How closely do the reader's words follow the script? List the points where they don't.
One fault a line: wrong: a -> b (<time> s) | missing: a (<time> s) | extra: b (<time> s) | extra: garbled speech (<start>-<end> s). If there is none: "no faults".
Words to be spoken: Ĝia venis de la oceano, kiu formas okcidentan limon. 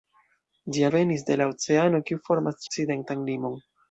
no faults